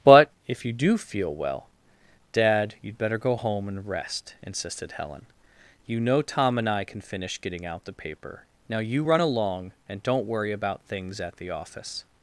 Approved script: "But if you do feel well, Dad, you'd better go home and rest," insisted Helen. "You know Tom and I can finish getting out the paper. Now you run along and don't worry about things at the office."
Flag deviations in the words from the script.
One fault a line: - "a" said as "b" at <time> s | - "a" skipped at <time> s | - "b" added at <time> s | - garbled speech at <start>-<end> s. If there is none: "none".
none